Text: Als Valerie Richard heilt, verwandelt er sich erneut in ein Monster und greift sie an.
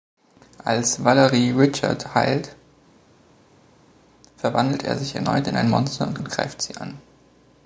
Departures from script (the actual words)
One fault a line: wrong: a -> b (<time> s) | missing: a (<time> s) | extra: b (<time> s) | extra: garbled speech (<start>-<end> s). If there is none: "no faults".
extra: und (6.2 s)